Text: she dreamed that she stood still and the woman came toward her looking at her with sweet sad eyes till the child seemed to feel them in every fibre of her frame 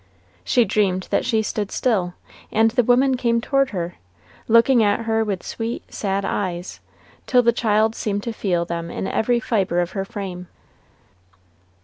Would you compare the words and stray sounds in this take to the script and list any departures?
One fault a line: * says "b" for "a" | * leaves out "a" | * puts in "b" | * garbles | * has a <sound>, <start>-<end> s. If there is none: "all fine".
all fine